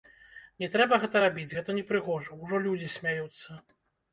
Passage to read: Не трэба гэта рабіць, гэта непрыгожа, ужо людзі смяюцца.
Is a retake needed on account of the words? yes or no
no